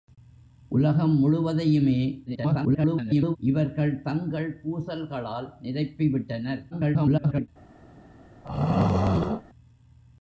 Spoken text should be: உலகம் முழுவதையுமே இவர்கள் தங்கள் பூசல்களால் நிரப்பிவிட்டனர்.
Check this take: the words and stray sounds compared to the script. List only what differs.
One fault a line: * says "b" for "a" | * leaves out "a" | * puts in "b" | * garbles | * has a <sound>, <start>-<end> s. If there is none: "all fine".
* garbles
* garbles
* has a throat clearing, 8.4-9.4 s